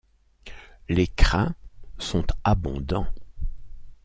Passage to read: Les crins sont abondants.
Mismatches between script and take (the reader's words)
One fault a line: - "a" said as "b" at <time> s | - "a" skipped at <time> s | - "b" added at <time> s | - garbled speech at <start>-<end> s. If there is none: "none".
none